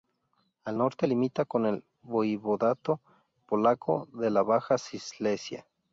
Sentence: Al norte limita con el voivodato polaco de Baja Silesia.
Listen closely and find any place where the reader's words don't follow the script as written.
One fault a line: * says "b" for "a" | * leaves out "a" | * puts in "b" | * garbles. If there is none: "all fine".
* puts in "la"